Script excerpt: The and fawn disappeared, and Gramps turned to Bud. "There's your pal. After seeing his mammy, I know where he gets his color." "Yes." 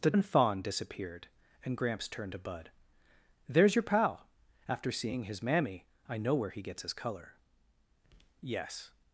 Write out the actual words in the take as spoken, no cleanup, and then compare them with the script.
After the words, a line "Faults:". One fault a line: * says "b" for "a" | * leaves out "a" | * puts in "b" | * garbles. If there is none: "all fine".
The and fawn disappeared, and Gramps turned to Bud. "There's your pal. After seeing his mammy, I know where he gets his color." "Yes."
Faults:
all fine